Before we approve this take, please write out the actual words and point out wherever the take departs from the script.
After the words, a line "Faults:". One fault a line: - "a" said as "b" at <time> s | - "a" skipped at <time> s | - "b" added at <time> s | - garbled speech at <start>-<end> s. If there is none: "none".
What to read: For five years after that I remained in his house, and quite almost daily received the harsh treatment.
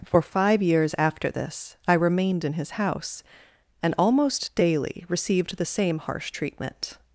For five years after this I remained in his house, and almost daily received the same harsh treatment.
Faults:
- "that" said as "this" at 1.3 s
- "quite" skipped at 3.9 s
- "same" added at 5.6 s